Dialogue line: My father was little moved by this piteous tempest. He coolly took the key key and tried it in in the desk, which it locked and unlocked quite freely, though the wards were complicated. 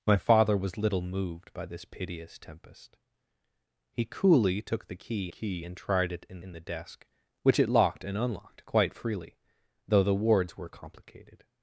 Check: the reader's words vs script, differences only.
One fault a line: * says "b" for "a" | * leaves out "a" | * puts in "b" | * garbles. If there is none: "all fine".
all fine